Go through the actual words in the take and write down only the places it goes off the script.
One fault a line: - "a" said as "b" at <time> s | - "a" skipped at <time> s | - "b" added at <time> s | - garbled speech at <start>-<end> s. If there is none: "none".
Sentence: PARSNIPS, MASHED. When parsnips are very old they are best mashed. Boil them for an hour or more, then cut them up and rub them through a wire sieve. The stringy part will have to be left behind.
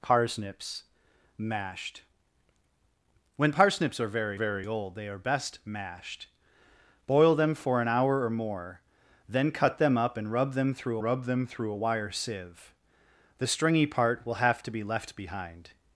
- "very" added at 4.3 s
- "rub them through" added at 11.0 s